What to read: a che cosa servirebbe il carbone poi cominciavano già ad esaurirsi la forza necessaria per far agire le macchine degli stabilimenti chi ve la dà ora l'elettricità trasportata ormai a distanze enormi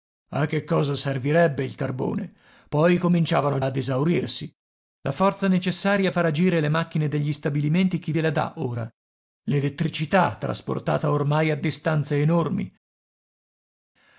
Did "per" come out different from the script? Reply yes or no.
yes